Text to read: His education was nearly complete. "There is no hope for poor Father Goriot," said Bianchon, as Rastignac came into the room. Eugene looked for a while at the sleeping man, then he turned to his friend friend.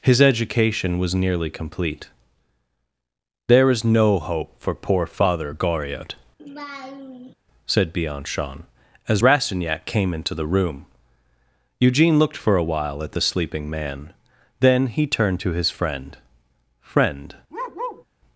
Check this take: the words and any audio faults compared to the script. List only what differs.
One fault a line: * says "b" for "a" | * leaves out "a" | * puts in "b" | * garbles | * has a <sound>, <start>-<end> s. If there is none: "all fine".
* has a laugh, 6.4-7.3 s
* has a bark, 17.5-18.0 s